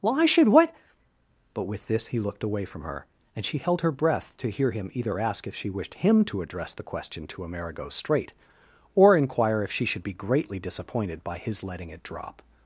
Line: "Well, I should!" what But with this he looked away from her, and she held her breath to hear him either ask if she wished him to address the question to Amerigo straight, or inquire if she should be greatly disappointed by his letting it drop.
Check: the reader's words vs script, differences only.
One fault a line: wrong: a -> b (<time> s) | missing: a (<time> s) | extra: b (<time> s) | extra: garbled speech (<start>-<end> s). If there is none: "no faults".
no faults